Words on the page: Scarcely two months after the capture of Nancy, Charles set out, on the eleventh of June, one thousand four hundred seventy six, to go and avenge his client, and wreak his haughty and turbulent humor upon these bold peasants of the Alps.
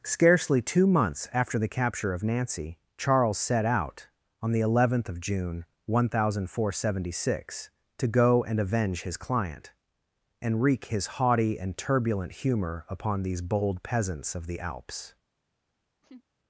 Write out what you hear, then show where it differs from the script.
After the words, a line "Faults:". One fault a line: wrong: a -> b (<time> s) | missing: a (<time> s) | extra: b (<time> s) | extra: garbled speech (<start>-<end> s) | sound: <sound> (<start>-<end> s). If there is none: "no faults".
Scarcely two months after the capture of Nancy, Charles set out, on the eleventh of June, one thousand four hundred seventy six, to go and avenge his client, and wreak his haughty and turbulent humor upon these bold peasants of the Alps.
Faults:
sound: laugh (16.0-16.2 s)